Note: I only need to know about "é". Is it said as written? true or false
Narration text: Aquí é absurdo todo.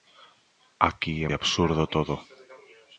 true